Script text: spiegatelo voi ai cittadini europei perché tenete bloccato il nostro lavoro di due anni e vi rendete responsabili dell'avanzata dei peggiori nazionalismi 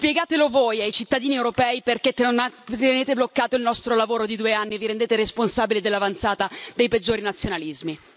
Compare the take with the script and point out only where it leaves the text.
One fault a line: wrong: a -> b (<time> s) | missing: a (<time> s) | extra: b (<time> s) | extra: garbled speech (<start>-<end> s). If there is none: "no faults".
no faults